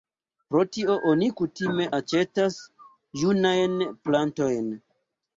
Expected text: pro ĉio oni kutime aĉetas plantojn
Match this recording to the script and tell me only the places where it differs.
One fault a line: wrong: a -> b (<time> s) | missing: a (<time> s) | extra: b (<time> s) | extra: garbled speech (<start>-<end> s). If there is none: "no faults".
wrong: ĉio -> tio (0.8 s)
extra: junajn (3.2 s)